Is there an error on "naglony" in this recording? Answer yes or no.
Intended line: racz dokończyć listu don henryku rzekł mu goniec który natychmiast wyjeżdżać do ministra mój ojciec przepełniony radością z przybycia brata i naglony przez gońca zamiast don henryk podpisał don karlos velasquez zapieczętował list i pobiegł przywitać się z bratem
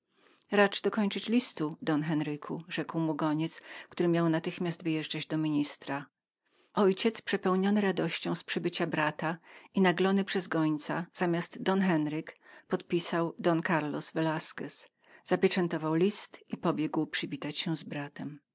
no